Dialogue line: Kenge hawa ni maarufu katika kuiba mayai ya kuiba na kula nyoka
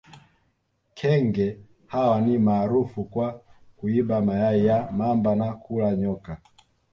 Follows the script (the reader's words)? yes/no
no